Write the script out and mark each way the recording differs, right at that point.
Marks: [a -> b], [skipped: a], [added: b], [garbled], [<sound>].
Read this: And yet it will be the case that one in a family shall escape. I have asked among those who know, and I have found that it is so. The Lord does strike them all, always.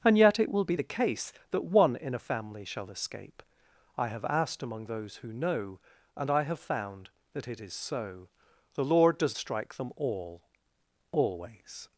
And yet it will be the case that one in a family shall escape. I have asked among those who know, and I have found that it is so. The Lord does strike them all, always.